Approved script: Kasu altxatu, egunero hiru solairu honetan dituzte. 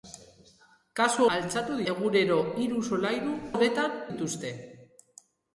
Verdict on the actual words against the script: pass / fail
pass